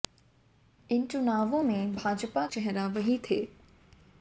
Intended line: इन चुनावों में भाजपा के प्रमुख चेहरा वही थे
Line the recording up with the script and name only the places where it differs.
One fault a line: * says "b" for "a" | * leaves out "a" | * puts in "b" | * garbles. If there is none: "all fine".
* leaves out "के प्रमुख"